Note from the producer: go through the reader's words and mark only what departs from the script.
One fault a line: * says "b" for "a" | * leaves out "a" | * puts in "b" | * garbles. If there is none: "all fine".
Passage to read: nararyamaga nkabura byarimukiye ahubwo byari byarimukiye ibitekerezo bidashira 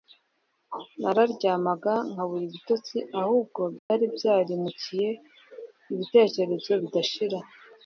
* says "ibitotsi" for "byarimukiye"